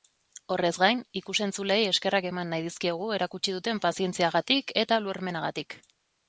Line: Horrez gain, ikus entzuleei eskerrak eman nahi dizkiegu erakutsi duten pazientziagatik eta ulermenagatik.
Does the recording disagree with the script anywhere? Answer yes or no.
no